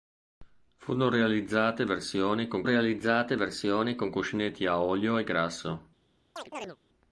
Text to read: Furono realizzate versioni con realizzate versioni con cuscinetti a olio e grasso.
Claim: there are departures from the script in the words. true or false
false